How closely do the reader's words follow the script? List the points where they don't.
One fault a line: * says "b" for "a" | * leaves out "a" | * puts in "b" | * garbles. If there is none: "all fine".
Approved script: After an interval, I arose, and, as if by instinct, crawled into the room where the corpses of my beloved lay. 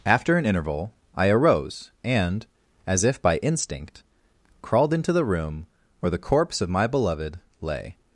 * says "corpse" for "corpses"